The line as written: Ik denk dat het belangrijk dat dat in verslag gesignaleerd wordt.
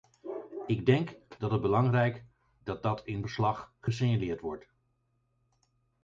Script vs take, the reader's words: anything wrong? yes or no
no